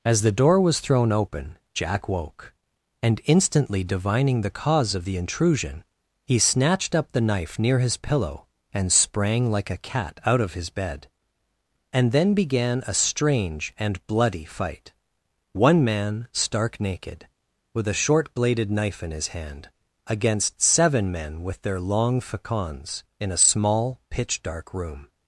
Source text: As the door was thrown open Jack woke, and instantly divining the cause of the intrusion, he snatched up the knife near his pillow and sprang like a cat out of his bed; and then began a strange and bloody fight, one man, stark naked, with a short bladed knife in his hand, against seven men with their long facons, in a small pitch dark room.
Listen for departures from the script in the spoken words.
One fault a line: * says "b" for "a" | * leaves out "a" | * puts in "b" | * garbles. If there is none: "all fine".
all fine